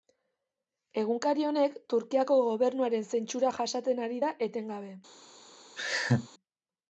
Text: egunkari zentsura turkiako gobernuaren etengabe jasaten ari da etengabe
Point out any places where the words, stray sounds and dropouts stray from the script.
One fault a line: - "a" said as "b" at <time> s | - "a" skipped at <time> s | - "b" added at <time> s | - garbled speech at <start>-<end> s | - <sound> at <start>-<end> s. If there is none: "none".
- "zentsura" said as "honek" at 1.5 s
- "etengabe" said as "zentsura" at 3.1 s
- laugh at 5.8-6.3 s